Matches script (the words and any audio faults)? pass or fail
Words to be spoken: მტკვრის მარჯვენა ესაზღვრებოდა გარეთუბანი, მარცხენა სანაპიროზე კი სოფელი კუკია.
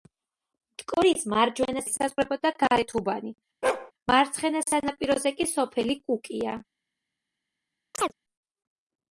fail